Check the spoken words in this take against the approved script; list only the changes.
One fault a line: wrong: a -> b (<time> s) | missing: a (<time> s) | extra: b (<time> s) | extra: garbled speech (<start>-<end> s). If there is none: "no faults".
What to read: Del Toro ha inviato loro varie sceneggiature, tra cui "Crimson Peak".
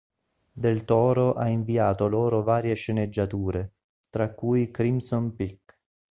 no faults